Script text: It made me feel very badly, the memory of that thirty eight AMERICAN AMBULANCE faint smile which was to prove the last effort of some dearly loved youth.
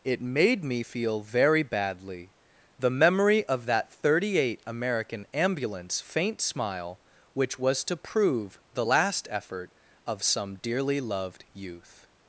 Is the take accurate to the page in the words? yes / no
yes